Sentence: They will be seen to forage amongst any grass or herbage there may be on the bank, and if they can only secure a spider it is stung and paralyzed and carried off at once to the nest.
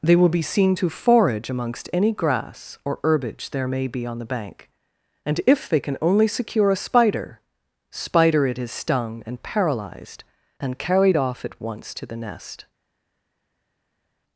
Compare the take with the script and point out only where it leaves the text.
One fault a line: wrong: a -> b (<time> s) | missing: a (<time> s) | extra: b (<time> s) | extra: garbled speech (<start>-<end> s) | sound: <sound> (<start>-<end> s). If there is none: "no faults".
extra: spider (7.9 s)